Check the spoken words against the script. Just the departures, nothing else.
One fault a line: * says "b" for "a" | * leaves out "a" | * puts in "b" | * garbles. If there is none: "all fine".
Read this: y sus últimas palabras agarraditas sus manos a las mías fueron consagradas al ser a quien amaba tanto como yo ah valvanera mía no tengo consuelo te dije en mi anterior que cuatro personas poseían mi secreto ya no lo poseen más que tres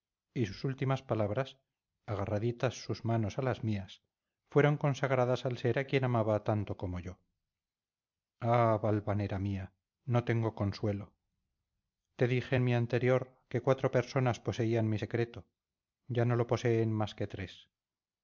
all fine